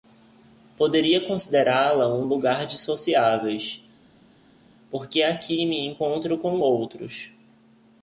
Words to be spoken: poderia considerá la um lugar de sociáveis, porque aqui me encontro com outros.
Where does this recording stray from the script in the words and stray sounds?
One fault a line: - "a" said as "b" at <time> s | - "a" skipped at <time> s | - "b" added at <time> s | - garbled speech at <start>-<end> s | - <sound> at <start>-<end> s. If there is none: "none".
none